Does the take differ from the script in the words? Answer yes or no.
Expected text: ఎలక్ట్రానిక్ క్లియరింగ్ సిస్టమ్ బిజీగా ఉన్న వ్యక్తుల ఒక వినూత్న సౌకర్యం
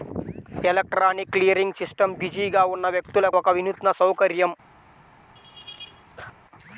no